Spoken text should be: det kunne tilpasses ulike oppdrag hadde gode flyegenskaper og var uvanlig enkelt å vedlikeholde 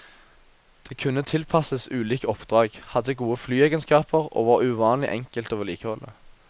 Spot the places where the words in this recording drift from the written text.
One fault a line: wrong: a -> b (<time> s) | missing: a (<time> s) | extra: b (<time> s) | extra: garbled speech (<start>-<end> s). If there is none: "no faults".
no faults